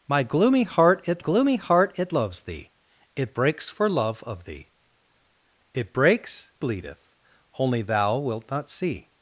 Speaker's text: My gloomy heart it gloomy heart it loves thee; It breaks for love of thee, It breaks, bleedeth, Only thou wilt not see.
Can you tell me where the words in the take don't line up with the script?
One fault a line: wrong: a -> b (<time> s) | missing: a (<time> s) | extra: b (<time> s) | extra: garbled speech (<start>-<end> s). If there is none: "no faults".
no faults